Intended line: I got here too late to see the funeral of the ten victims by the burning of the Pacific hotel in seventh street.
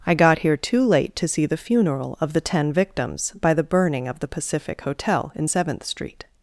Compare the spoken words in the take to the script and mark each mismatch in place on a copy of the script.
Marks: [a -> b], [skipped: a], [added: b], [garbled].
I got here too late to see the funeral of the ten victims by the burning of the Pacific hotel in seventh street.